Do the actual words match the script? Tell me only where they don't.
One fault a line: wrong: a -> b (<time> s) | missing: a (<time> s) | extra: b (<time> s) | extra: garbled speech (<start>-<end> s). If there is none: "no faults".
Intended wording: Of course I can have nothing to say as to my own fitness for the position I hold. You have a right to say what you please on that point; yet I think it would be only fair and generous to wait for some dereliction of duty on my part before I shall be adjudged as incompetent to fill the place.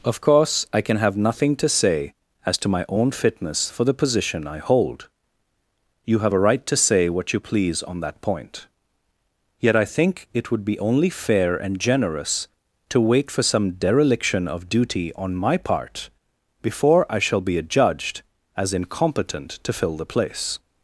no faults